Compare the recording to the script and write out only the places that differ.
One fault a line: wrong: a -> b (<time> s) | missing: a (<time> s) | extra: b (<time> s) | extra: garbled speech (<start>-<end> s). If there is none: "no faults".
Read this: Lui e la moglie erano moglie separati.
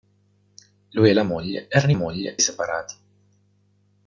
no faults